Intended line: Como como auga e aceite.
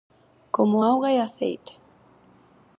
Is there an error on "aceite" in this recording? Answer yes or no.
no